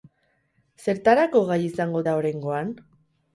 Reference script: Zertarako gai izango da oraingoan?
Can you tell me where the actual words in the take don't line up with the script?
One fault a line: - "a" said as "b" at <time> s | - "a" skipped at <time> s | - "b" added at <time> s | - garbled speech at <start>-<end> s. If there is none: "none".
none